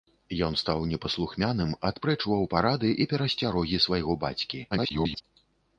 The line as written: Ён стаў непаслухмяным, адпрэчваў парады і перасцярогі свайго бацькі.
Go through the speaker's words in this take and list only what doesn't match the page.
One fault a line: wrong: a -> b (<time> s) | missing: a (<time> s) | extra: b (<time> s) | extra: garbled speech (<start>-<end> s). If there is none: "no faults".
extra: garbled speech (4.7-5.2 s)